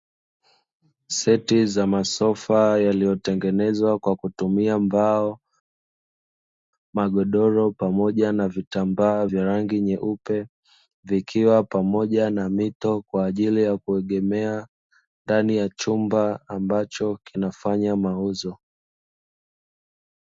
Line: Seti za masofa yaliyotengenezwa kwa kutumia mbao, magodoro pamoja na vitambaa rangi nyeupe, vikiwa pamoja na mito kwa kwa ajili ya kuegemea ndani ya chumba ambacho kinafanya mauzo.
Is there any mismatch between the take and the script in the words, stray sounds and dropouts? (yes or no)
yes